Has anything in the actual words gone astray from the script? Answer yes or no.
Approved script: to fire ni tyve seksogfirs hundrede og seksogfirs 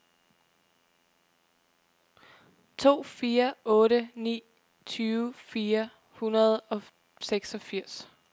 yes